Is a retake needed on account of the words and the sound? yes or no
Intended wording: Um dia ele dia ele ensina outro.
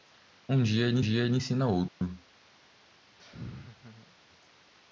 yes